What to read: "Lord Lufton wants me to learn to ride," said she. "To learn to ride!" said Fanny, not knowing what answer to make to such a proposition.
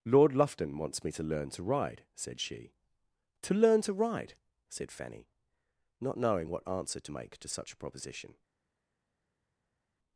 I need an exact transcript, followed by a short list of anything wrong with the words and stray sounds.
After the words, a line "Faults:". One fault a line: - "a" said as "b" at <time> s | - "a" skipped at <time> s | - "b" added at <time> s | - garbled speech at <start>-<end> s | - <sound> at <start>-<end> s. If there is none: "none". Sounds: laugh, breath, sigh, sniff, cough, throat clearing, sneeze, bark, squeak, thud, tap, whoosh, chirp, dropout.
"Lord Lufton wants me to learn to ride," said she. "To learn to ride!" said Fanny, not knowing what answer to make to such a proposition.
Faults:
none